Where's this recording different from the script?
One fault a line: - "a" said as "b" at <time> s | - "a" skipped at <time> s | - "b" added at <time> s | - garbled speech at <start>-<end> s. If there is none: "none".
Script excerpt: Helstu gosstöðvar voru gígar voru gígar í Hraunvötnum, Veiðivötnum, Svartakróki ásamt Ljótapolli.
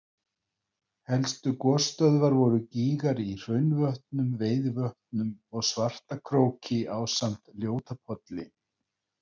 - "voru gígar" skipped at 3.2 s
- "og" added at 5.5 s